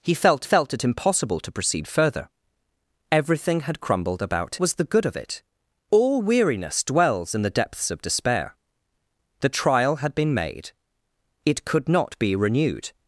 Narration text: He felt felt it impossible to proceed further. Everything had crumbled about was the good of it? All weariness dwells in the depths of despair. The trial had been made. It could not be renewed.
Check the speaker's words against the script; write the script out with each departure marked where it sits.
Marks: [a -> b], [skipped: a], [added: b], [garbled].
He felt felt it impossible to proceed further. Everything had crumbled about was the good of it? All weariness dwells in the depths of despair. The trial had been made. It could not be renewed.